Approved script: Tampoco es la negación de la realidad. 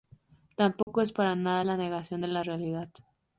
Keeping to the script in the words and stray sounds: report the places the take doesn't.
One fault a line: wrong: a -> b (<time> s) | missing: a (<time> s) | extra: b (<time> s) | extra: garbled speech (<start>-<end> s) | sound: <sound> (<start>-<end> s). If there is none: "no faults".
sound: dropout (0.8-0.9 s)
extra: para nada (1.1 s)